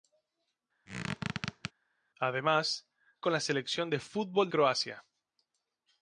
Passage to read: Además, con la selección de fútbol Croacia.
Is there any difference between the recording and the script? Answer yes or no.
no